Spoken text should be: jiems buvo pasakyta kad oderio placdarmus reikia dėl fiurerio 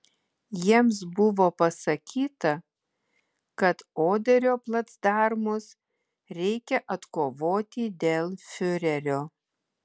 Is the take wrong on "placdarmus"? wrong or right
right